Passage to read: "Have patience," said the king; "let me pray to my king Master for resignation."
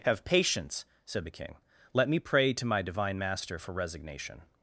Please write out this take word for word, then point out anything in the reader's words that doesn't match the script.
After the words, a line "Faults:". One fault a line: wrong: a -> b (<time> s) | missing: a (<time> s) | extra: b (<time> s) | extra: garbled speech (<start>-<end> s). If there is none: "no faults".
"Have patience," said the king; "let me pray to my divine Master for resignation."
Faults:
wrong: king -> divine (2.8 s)